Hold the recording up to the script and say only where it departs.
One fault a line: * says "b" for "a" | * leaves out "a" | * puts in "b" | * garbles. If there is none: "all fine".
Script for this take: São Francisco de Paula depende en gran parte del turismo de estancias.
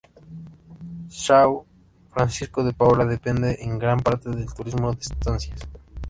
all fine